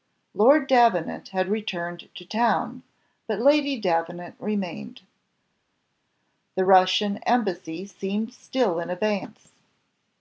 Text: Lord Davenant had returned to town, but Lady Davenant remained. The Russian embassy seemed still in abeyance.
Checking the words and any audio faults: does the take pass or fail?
pass